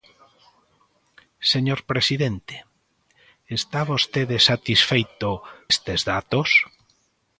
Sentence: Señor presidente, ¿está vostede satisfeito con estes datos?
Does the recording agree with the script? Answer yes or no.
no